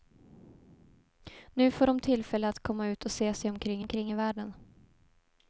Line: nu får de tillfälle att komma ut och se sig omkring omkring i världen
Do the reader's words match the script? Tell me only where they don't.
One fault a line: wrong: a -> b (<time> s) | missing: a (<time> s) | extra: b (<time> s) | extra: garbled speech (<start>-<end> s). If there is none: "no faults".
no faults